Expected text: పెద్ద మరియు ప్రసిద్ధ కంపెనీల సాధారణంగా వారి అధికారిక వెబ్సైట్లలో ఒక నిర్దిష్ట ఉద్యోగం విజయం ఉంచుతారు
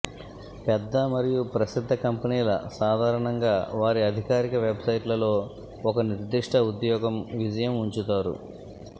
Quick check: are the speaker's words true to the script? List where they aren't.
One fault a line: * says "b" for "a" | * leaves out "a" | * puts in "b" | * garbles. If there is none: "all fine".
all fine